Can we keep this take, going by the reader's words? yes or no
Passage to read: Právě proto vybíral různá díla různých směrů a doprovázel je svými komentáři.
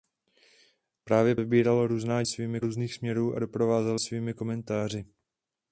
no